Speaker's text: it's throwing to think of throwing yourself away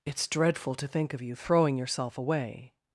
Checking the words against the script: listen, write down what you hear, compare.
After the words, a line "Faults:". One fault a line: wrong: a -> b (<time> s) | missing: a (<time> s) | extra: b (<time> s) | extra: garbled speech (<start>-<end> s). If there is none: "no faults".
it's dreadful to think of you throwing yourself away
Faults:
wrong: throwing -> dreadful (0.3 s)
extra: you (1.2 s)